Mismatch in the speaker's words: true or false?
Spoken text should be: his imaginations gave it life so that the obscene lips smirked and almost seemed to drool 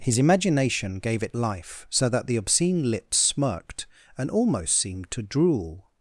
true